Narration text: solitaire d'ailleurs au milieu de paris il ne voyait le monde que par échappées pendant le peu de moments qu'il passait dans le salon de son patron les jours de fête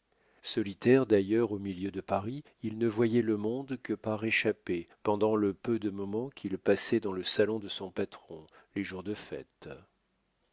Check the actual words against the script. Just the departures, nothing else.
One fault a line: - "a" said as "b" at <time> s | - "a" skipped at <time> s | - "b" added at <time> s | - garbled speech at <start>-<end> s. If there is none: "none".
none